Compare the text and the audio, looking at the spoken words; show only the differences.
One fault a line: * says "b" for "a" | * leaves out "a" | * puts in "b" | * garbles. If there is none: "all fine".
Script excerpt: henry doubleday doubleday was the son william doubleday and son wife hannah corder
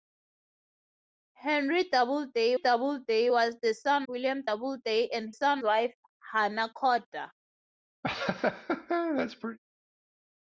all fine